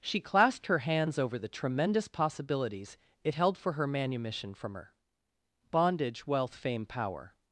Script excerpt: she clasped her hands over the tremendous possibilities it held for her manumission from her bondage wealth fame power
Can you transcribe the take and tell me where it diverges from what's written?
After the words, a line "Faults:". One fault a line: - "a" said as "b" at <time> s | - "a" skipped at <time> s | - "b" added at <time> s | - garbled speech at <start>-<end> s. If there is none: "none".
she clasped her hands over the tremendous possibilities it held for her manumission from her bondage wealth fame power
Faults:
none